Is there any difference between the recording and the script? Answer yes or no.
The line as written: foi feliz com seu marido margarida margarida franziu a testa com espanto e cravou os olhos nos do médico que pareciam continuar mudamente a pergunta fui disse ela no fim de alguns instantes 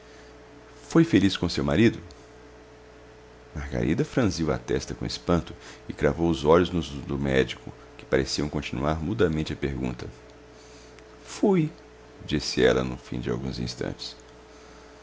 yes